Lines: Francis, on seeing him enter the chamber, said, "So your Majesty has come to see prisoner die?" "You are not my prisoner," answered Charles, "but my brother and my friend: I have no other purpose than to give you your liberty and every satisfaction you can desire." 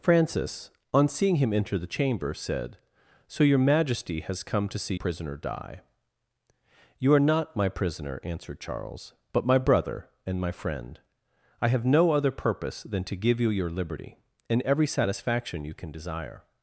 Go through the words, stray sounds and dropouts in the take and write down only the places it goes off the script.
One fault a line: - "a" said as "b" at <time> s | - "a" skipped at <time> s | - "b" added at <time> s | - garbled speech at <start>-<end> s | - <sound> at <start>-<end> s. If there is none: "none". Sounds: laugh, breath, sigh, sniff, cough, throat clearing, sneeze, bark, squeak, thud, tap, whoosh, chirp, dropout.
none